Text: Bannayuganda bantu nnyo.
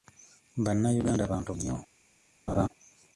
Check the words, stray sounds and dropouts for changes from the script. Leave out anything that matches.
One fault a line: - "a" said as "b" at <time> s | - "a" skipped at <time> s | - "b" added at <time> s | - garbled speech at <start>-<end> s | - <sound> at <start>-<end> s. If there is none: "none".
- laugh at 2.5-2.7 s